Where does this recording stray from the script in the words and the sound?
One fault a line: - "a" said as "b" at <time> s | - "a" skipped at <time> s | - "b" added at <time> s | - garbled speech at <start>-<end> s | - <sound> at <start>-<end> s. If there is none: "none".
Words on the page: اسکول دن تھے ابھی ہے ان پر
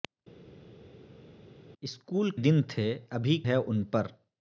none